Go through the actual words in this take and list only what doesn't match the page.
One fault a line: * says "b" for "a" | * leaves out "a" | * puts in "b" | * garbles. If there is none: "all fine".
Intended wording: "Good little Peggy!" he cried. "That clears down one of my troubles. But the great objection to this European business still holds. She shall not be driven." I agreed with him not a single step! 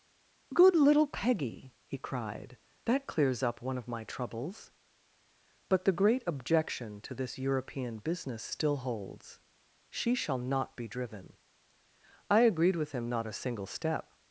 * says "up" for "down"